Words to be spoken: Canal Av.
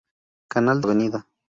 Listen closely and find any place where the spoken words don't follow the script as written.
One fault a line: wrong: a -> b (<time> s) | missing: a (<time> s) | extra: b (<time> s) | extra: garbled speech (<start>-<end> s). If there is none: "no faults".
no faults